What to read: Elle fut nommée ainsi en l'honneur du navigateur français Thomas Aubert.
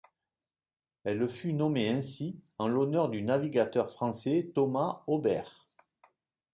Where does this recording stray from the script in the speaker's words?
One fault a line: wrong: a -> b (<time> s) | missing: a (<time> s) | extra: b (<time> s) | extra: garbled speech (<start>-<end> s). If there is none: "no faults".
no faults